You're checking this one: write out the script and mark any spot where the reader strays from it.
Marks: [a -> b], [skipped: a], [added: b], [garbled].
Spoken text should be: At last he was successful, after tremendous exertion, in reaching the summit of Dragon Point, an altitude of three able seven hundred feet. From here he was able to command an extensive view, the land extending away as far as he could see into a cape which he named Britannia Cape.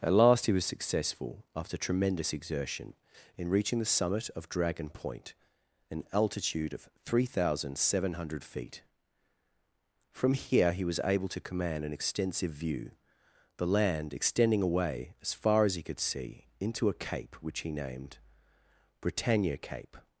At last he was successful, after tremendous exertion, in reaching the summit of Dragon Point, an altitude of three [able -> thousand] seven hundred feet. From here he was able to command an extensive view, the land extending away as far as he could see into a cape which he named Britannia Cape.